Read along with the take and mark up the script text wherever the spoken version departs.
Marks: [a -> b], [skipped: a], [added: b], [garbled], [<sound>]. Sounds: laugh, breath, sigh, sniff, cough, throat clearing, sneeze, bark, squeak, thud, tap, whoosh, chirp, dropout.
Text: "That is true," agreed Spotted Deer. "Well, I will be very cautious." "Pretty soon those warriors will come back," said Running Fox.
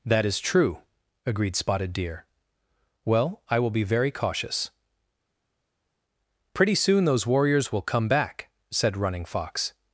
"That is true," agreed Spotted Deer. "Well, I will be very cautious." "Pretty soon those warriors will come back," said Running Fox.